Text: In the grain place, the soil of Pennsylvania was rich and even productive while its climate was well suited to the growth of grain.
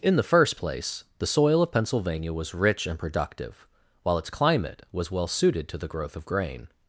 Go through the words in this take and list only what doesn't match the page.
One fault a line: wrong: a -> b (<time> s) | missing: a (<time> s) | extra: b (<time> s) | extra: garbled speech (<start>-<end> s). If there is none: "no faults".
wrong: grain -> first (0.2 s)
missing: even (3.0 s)